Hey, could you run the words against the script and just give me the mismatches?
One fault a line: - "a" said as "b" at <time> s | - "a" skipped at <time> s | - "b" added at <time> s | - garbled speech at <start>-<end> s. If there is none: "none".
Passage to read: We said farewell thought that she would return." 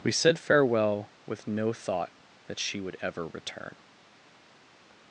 - "with no" added at 1.2 s
- "ever" added at 3.0 s